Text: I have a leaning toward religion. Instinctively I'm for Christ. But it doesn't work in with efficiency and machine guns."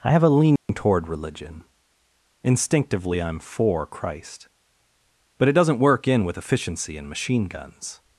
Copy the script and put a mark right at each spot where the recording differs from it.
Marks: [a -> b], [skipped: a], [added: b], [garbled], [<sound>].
I have a leaning [dropout] toward religion. Instinctively I'm for Christ. But it doesn't work in with efficiency and machine guns."